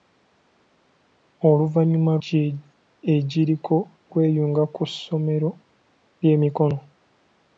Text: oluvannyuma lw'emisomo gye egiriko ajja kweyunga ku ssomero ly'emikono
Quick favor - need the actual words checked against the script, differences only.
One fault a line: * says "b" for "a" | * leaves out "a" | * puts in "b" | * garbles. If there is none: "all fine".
* leaves out "lw'emisomo"
* leaves out "ajja"